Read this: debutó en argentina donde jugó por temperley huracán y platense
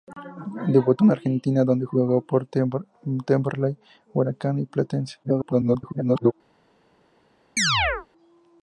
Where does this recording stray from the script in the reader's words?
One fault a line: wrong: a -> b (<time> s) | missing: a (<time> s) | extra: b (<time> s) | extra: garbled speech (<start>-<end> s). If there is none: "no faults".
extra: garbled speech (5.2-6.3 s)